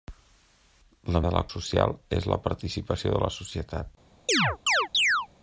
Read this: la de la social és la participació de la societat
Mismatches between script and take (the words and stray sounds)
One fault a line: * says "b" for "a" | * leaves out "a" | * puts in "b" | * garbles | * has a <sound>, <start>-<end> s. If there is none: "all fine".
* has a chirp, 4.3-5.3 s